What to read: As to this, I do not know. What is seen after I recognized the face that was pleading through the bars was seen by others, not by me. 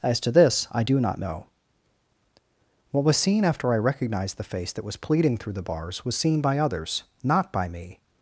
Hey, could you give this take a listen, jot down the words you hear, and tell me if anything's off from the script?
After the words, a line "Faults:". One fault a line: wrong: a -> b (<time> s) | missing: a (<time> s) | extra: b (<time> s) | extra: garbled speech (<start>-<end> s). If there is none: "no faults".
As to this, I do not know. What was seen after I recognized the face that was pleading through the bars was seen by others, not by me.
Faults:
wrong: is -> was (3.0 s)